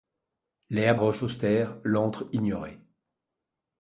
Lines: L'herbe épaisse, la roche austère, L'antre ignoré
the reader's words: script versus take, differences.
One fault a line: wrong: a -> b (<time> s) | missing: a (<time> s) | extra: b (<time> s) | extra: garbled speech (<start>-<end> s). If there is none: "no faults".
missing: épaisse la (1.0 s)